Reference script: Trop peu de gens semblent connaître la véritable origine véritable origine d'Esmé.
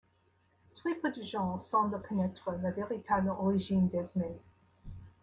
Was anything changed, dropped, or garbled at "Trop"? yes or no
yes